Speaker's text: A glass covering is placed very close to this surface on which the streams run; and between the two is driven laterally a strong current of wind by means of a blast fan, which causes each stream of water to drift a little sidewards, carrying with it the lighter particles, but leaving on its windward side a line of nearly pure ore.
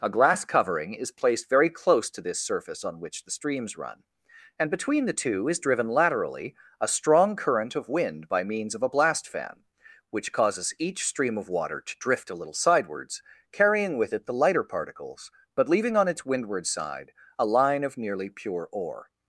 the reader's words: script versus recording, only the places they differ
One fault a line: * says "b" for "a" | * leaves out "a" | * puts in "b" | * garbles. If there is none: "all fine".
all fine